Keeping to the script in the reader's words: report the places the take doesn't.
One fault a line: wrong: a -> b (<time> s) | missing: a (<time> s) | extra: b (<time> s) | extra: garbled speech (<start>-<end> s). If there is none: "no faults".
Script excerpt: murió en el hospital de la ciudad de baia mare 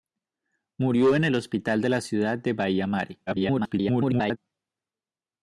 extra: garbled speech (3.3-4.4 s)